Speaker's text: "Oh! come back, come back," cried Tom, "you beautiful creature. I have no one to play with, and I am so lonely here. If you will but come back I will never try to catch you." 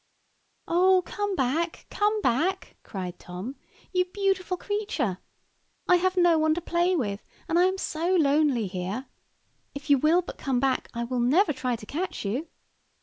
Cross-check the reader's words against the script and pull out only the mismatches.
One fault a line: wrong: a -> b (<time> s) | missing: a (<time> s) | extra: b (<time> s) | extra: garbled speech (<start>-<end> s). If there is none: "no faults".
no faults